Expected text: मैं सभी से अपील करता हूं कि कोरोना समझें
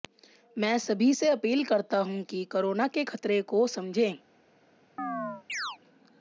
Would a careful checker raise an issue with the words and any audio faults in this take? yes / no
yes